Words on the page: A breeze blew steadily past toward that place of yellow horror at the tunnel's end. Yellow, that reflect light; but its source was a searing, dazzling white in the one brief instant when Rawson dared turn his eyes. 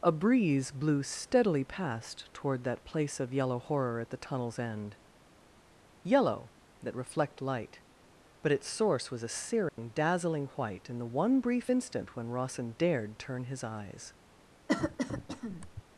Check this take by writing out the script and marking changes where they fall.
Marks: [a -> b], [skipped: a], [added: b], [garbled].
A breeze blew steadily past toward that place of yellow horror at the tunnel's end. Yellow, that reflect light; but its source was a searing, dazzling white in the one brief instant when Rawson dared turn his eyes.